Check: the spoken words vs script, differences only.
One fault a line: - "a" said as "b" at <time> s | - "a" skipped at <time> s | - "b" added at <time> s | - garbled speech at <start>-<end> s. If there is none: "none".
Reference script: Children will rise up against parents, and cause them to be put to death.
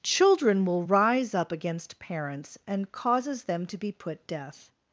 - "cause" said as "causes" at 2.9 s
- "to" skipped at 4.3 s